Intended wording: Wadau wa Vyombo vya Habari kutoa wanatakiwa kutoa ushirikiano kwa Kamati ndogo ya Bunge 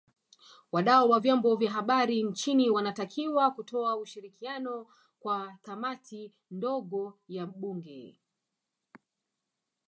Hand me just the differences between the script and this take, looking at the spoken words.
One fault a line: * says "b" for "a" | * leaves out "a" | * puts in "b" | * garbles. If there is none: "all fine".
* says "nchini" for "kutoa"